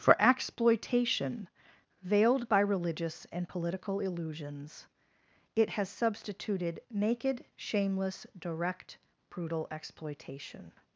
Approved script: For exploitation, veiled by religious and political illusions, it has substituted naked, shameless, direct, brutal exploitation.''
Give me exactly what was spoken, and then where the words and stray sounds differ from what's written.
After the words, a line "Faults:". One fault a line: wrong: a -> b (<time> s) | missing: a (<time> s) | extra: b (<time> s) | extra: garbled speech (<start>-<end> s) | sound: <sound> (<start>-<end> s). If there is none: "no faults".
For exploitation, veiled by religious and political illusions, it has substituted naked, shameless, direct, brutal exploitation.''
Faults:
no faults